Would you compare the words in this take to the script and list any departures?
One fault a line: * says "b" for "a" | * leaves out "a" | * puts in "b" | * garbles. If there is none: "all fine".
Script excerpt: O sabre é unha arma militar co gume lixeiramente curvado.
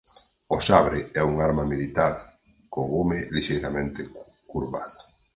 all fine